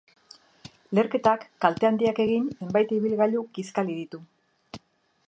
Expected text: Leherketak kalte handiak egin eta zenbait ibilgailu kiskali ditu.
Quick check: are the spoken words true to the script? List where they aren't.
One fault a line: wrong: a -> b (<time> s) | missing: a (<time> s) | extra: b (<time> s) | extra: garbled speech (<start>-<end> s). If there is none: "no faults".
missing: eta (2.5 s)